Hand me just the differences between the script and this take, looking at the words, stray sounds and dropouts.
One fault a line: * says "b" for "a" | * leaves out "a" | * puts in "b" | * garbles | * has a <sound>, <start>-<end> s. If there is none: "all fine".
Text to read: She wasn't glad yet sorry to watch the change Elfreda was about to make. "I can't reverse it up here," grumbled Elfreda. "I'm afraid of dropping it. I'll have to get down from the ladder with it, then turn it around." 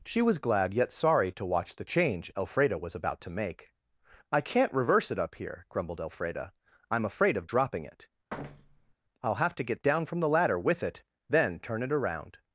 * says "was" for "wasn't"
* has a thud, 8.3-8.9 s